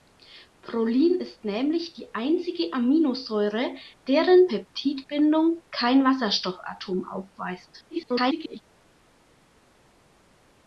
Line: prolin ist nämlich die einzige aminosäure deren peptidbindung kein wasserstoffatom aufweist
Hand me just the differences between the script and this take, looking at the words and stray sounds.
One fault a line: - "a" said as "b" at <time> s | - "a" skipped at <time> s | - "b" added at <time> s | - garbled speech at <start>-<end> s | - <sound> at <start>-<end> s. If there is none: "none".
- garbled speech at 7.9-8.6 s